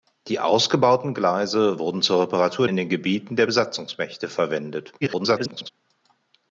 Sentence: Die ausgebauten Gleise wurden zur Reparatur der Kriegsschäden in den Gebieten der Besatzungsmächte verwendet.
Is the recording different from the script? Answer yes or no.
yes